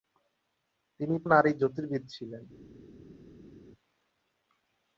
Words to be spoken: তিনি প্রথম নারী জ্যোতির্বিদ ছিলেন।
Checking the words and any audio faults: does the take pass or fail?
fail